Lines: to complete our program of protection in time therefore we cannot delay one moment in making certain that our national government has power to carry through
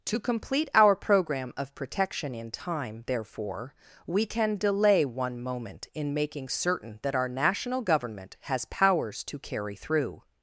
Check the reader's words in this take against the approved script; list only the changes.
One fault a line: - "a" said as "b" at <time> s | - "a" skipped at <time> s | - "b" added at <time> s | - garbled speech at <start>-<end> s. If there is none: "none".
- "cannot" said as "can" at 4.2 s
- "power" said as "powers" at 8.7 s